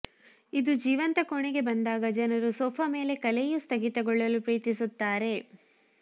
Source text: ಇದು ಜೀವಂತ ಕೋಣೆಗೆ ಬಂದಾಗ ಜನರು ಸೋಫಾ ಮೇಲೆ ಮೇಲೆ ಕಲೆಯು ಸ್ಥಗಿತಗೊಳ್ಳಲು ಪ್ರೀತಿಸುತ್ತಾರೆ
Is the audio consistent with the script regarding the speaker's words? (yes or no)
no